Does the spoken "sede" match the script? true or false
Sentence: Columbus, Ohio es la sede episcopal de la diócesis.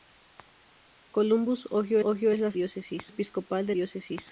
false